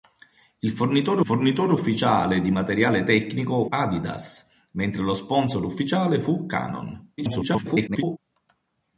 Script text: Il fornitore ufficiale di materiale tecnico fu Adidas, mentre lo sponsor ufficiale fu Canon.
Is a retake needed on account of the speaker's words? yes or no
yes